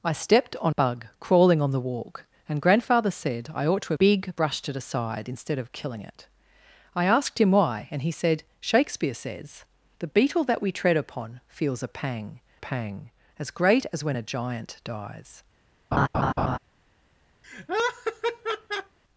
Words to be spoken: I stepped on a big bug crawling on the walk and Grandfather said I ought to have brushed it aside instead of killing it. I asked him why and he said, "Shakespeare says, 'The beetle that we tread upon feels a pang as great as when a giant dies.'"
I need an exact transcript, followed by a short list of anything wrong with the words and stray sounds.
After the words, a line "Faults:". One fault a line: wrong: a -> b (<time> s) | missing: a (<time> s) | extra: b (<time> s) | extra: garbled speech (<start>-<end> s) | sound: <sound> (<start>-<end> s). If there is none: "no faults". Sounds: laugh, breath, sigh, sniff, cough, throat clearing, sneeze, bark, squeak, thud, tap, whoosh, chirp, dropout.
I stepped on bug crawling on the walk and Grandfather said I ought to big brushed it aside instead of killing it. I asked him why and he said, "Shakespeare says, 'The beetle that we tread upon feels a pang pang as great as when a giant dies.'"
Faults:
missing: a big (0.7 s)
wrong: have -> big (3.9 s)
extra: pang (12.6 s)
sound: laugh (15.9-16.6 s)
sound: laugh (17.4-19.0 s)